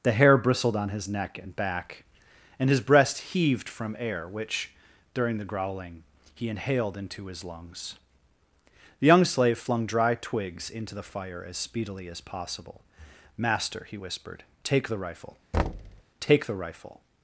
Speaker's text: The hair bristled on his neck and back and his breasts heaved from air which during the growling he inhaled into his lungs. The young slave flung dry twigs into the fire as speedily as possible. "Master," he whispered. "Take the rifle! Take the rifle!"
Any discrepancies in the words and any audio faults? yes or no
yes